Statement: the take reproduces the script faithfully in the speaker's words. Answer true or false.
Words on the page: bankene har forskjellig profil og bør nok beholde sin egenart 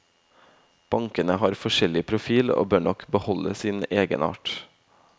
true